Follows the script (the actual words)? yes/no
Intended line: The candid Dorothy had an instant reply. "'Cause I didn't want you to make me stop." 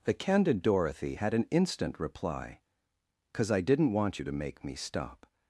yes